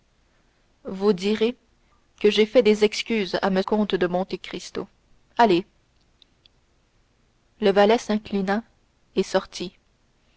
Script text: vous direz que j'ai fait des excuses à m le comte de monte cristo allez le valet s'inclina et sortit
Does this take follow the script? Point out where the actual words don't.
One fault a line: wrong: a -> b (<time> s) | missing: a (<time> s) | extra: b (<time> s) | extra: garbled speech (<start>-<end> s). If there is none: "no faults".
missing: le (3.6 s)